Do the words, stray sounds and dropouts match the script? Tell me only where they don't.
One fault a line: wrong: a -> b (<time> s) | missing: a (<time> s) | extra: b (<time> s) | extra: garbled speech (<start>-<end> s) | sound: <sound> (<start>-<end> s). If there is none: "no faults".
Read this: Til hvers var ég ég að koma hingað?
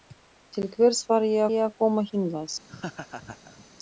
sound: laugh (2.7-3.7 s)